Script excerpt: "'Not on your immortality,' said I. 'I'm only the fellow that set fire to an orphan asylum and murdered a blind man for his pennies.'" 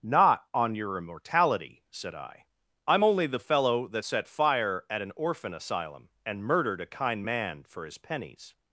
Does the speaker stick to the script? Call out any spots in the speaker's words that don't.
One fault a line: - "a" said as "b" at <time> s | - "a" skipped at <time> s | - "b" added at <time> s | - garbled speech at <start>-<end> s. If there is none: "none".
- "to" said as "at" at 4.9 s
- "blind" said as "kind" at 6.9 s